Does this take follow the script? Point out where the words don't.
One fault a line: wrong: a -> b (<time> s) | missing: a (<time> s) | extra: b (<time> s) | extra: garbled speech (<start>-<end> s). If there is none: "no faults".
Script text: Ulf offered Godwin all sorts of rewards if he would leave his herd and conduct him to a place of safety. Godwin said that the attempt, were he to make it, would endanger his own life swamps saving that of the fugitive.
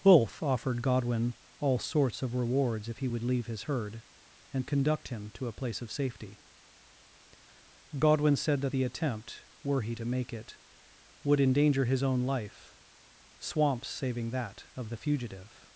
no faults